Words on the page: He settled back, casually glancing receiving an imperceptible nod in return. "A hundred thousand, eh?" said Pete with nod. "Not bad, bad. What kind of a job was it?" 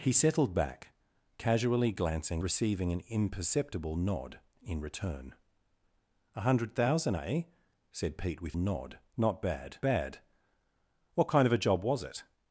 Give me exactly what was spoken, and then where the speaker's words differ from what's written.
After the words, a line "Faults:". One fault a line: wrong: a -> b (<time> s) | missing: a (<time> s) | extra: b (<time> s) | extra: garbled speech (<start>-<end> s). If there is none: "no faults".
He settled back, casually glancing receiving an imperceptible nod in return. "A hundred thousand, eh?" said Pete with nod. "Not bad, bad. What kind of a job was it?"
Faults:
no faults